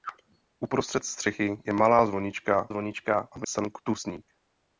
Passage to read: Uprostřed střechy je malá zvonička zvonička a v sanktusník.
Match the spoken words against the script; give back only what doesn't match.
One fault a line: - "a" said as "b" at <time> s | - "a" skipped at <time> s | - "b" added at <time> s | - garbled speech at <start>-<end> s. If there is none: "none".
none